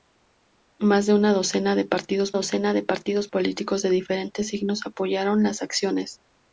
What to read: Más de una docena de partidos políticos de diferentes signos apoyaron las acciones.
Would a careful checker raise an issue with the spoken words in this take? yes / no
yes